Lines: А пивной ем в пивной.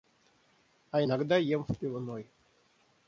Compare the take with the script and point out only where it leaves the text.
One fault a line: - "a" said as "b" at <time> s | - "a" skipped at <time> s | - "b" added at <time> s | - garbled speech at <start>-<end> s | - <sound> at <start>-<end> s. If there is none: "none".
- "пивной" said as "иногда" at 1.0 s